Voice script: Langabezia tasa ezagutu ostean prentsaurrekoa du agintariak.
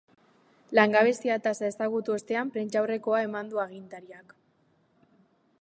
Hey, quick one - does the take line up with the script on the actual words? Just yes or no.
no